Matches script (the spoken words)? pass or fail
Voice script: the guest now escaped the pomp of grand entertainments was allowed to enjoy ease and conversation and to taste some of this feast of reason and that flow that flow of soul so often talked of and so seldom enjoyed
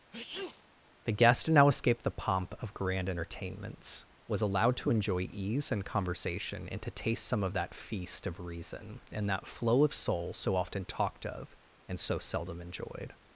fail